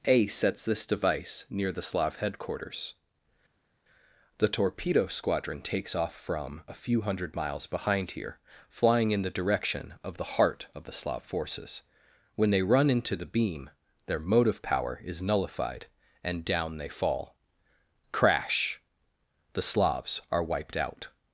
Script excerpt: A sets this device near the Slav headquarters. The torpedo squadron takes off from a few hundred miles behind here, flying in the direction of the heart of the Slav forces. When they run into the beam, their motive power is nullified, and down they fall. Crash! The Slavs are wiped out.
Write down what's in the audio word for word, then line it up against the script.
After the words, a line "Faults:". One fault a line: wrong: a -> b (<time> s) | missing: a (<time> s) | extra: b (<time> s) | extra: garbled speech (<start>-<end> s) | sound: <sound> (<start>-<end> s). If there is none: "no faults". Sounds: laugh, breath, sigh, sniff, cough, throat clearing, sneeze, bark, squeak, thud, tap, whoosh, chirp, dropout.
A sets this device near the Slav headquarters. The torpedo squadron takes off from a few hundred miles behind here, flying in the direction of the heart of the Slav forces. When they run into the beam, their motive power is nullified, and down they fall. Crash! The Slavs are wiped out.
Faults:
no faults